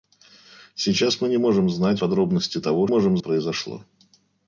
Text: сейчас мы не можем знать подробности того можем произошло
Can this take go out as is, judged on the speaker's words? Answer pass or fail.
pass